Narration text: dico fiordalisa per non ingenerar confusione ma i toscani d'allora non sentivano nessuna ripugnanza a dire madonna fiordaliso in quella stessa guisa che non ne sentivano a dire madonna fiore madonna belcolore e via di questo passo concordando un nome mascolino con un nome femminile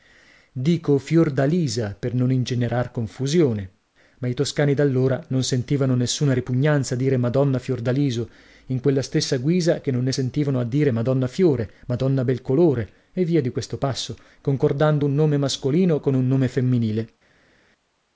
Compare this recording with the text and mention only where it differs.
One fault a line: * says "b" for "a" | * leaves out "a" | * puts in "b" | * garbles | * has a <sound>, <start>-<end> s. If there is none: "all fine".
all fine